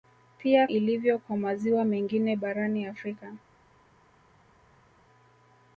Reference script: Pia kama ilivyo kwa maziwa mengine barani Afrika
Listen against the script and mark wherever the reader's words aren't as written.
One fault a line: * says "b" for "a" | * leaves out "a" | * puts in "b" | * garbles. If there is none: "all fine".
* leaves out "kama"